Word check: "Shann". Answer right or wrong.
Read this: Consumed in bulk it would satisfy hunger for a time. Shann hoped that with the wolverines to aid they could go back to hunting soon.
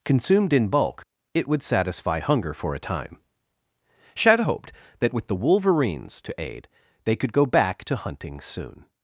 wrong